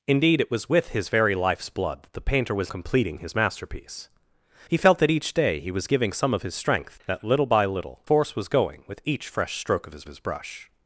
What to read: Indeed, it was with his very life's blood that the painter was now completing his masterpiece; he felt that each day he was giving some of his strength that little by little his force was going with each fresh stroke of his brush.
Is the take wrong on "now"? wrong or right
wrong